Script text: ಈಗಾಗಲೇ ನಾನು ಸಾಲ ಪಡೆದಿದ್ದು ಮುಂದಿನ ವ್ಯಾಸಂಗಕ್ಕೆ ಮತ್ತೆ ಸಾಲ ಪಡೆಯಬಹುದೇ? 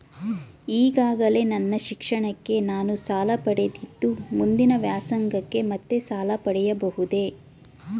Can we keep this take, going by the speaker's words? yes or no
no